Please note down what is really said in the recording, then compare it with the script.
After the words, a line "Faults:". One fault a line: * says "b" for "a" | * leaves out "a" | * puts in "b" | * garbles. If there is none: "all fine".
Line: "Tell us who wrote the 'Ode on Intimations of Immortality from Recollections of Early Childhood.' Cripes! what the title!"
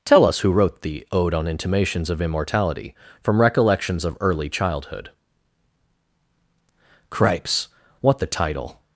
"Tell us who wrote the 'Ode on Intimations of Immortality from Recollections of Early Childhood.' Cripes! what the title!"
Faults:
all fine